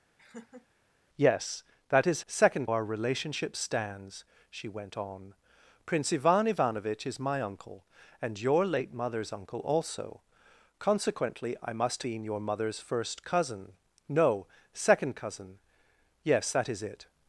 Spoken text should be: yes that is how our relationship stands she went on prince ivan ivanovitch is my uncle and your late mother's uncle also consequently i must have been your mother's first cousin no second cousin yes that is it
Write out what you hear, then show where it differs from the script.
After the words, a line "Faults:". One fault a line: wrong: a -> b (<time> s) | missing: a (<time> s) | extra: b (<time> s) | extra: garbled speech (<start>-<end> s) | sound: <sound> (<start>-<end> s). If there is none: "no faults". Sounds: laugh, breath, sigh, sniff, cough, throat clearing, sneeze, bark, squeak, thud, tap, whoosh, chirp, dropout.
yes that is second our relationship stands she went on prince ivan ivanovitch is my uncle and your late mother's uncle also consequently i must been your mother's first cousin no second cousin yes that is it
Faults:
sound: laugh (0.2-0.7 s)
wrong: how -> second (2.3 s)
missing: have (12.0 s)